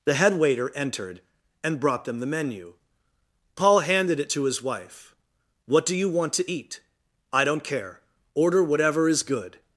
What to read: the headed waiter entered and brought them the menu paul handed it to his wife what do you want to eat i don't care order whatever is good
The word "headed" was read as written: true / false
false